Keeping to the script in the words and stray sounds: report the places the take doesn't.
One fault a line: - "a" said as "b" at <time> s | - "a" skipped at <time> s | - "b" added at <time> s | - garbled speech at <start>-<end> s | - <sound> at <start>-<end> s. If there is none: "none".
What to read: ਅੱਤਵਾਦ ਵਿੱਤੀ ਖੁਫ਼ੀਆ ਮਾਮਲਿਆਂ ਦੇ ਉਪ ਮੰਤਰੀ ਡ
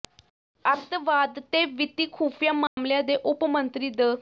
- "ਤੇ" added at 1.5 s
- dropout at 2.7-2.8 s